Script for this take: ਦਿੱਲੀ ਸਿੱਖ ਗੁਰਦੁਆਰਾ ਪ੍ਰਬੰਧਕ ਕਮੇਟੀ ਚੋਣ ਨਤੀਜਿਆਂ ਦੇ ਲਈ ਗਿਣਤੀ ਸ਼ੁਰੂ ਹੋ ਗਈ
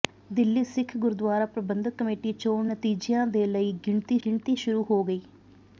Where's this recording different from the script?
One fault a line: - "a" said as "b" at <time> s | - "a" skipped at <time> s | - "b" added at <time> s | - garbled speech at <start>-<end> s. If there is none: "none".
- "ਗਿਣਤੀ" added at 4.2 s